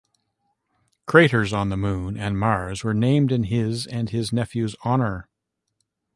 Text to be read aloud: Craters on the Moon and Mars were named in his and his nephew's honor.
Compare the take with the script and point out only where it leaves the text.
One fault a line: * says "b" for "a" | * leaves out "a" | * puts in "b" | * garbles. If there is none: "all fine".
all fine